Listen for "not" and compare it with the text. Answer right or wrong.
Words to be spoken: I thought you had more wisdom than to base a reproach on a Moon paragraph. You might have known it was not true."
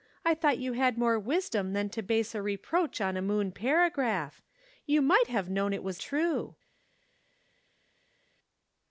wrong